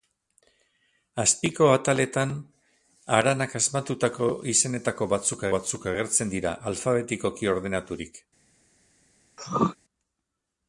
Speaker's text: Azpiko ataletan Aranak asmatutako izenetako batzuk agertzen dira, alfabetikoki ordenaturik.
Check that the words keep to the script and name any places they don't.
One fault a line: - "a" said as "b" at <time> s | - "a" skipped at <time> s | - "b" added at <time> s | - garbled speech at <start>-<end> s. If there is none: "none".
- "batzuk" added at 5.6 s